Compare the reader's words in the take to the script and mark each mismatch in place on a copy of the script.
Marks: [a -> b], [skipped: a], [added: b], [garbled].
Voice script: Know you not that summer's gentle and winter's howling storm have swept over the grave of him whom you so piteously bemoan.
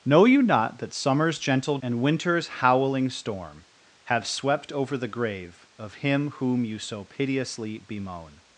Know you not that summer's gentle and winter's howling storm have swept over the grave of him whom you so piteously bemoan.